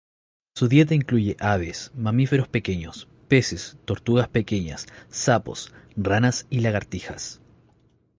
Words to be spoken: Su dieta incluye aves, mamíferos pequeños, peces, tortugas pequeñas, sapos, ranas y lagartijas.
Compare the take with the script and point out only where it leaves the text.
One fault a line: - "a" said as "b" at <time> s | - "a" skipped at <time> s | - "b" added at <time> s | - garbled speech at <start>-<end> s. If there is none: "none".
none